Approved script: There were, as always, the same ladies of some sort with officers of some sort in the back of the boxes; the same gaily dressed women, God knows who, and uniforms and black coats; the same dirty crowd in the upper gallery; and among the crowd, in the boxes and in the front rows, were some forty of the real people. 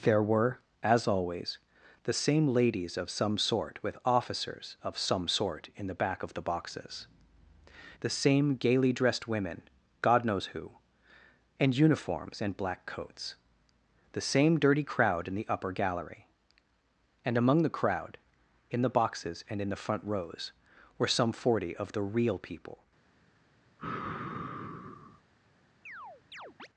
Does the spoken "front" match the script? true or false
true